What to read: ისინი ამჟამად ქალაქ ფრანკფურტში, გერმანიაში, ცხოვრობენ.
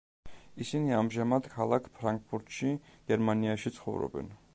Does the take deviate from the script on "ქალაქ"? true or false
false